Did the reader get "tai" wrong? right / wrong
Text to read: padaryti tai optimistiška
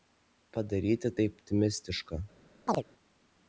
right